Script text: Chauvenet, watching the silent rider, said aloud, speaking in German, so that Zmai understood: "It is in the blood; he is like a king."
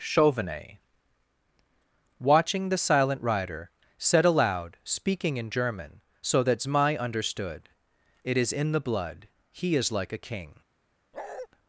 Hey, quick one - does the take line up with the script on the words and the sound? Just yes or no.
no